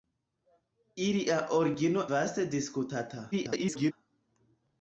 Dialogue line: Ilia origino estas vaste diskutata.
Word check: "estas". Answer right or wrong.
wrong